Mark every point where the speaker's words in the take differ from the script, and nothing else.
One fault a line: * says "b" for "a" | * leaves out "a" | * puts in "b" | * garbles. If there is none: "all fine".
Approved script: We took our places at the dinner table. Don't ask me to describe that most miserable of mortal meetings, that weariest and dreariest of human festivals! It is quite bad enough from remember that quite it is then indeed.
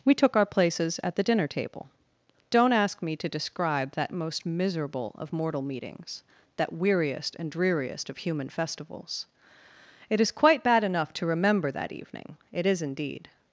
* says "to" for "from"
* says "evening" for "quite"
* leaves out "then"